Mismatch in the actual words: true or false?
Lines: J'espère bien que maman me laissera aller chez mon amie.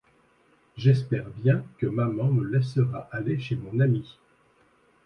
false